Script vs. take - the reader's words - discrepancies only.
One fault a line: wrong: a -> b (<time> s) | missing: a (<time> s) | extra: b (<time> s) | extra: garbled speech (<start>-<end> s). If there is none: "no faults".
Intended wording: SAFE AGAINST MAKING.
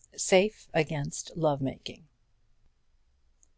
extra: LOVE (1.4 s)